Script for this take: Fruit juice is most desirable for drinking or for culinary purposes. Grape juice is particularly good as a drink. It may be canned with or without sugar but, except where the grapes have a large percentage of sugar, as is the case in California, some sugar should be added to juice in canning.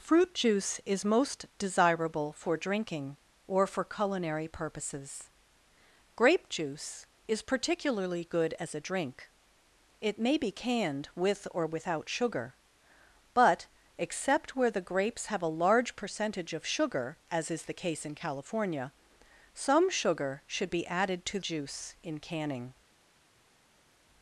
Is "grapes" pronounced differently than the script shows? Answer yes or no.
no